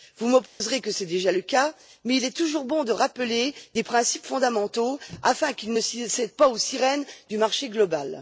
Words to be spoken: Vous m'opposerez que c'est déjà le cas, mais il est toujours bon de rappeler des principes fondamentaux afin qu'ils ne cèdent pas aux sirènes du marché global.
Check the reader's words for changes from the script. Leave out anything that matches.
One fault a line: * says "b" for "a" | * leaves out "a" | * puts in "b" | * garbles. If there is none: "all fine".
all fine